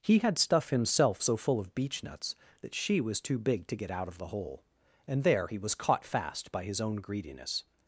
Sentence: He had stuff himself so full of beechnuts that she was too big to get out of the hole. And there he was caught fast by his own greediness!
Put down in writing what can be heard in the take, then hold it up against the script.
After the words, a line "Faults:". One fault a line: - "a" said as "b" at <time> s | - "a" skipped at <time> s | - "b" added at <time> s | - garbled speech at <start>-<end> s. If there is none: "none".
He had stuff himself so full of beechnuts that she was too big to get out of the hole. And there he was caught fast by his own greediness!
Faults:
none